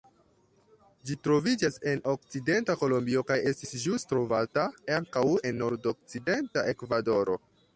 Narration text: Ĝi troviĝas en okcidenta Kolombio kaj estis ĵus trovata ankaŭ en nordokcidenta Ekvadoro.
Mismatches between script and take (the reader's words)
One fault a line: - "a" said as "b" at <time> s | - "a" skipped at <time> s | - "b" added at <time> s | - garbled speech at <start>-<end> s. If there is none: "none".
none